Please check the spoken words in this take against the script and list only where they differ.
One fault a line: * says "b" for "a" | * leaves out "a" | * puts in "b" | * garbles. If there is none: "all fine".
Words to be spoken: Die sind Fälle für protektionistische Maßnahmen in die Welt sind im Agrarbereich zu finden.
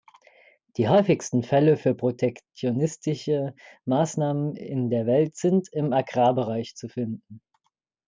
* says "häufigsten" for "sind"
* says "der" for "die"